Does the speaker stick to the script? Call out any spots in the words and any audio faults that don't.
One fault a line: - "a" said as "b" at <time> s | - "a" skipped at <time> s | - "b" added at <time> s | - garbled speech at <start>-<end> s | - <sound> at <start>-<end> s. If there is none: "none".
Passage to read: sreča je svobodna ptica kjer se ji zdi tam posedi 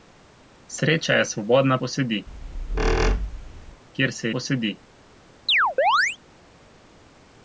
- "ptica" said as "posedi" at 1.8 s
- squeak at 2.3-3.8 s
- "ji zdi tam" skipped at 4.3 s
- chirp at 5.5-6.2 s